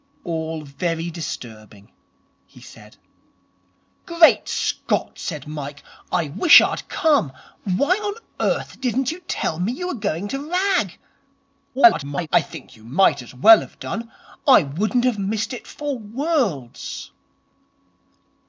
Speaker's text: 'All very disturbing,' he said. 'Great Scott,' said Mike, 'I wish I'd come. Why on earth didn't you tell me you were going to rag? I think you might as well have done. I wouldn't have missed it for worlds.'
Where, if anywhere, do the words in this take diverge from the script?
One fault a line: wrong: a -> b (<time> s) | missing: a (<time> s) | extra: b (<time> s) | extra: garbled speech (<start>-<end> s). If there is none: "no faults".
extra: garbled speech (11.7-12.3 s)